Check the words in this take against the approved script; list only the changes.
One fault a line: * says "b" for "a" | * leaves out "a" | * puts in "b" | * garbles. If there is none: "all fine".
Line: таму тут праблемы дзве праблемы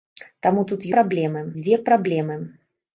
all fine